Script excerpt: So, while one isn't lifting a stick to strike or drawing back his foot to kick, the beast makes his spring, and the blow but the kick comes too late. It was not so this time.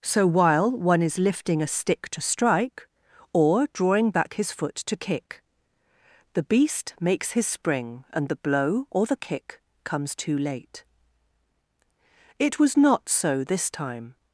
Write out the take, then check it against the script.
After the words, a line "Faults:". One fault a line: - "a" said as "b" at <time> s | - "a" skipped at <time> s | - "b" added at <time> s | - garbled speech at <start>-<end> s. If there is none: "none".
So, while one is lifting a stick to strike or drawing back his foot to kick, the beast makes his spring, and the blow or the kick comes too late. It was not so this time.
Faults:
- "isn't" said as "is" at 1.0 s
- "but" said as "or" at 8.9 s